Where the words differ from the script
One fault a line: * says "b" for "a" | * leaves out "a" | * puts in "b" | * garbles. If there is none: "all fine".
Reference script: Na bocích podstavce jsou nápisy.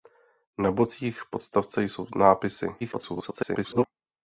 * garbles